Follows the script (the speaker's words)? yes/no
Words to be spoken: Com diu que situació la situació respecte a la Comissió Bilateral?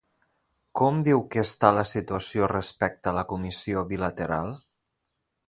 no